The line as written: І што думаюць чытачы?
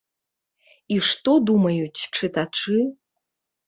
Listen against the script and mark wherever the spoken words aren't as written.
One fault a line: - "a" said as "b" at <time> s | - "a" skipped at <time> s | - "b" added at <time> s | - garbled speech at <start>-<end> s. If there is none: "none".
none